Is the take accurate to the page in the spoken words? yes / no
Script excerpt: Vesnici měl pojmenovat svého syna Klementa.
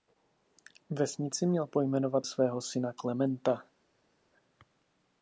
yes